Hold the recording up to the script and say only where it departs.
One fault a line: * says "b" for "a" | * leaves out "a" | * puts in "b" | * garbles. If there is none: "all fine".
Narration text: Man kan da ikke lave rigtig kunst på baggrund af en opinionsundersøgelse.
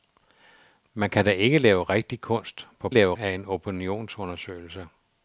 * says "lave" for "baggrund"